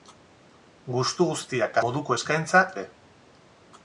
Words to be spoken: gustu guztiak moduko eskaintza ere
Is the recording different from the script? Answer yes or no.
no